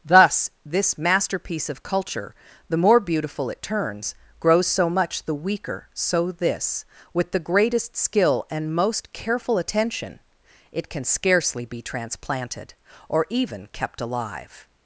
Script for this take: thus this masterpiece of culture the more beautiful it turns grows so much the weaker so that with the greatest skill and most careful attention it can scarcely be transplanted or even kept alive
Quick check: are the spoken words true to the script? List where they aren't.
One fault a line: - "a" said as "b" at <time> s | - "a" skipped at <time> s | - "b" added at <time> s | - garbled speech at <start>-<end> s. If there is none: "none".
- "that" said as "this" at 6.3 s